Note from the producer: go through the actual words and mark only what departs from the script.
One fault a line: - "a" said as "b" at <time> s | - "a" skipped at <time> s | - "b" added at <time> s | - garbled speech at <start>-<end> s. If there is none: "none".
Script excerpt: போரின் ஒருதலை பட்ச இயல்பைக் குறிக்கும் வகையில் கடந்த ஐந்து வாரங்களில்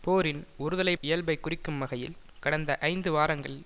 - "பட்ச" skipped at 0.9 s